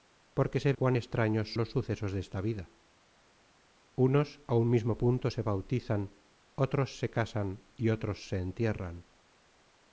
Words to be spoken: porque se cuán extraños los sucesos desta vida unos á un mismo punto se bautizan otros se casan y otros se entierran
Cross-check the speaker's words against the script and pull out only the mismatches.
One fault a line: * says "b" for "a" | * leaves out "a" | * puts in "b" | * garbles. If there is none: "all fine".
all fine